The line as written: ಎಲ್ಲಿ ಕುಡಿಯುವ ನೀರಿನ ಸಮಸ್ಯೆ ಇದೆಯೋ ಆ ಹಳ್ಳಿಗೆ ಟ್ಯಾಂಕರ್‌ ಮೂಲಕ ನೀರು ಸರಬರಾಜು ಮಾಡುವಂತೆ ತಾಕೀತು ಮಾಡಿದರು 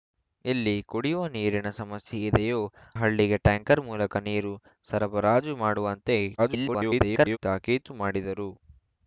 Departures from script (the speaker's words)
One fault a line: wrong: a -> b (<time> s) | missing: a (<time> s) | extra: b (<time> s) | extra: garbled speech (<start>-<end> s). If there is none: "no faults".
missing: ಆ (2.6 s)
extra: garbled speech (6.4-7.4 s)